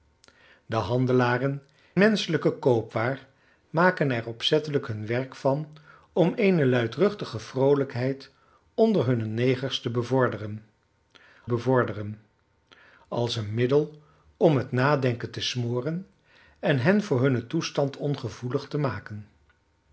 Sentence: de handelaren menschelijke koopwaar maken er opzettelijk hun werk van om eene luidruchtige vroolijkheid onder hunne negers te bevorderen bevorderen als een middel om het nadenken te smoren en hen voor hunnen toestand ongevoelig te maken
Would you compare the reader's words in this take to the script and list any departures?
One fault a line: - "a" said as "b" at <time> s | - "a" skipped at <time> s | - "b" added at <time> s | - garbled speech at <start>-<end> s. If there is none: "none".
none